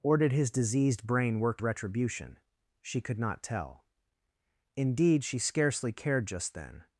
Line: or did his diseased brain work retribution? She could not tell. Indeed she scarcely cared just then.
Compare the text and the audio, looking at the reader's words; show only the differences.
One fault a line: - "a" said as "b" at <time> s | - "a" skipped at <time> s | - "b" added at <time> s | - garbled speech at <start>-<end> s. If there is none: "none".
none